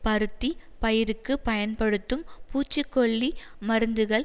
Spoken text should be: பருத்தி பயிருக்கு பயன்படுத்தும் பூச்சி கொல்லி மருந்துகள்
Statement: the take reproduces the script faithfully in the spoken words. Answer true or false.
true